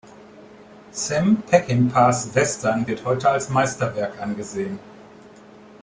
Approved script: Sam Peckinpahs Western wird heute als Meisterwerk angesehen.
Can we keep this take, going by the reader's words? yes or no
yes